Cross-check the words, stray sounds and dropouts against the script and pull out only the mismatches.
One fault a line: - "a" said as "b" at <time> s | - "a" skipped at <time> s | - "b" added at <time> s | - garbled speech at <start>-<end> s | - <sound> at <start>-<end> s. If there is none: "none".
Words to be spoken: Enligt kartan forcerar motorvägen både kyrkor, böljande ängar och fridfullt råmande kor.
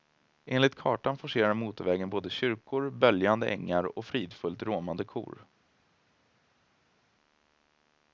none